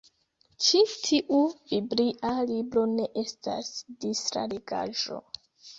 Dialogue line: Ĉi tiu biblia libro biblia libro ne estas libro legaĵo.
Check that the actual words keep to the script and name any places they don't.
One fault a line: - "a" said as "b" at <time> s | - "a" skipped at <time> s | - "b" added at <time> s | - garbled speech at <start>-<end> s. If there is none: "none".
- "biblia libro" skipped at 2.9 s
- "libro" said as "distra" at 4.1 s